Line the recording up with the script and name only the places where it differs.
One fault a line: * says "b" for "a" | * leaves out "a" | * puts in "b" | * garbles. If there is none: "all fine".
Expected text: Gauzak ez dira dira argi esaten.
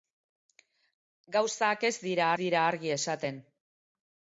all fine